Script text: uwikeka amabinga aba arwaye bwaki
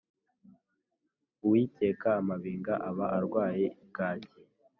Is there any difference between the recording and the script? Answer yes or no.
no